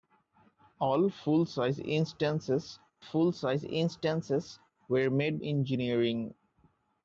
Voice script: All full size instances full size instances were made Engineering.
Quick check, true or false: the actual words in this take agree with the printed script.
true